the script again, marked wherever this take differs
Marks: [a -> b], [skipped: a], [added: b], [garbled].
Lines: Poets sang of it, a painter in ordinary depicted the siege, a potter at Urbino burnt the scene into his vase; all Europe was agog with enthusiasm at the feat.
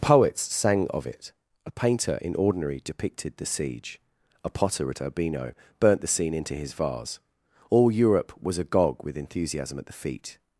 Poets sang of it, a painter in ordinary depicted the siege, a potter at Urbino burnt the scene into his vase; all Europe was agog with enthusiasm at the feat.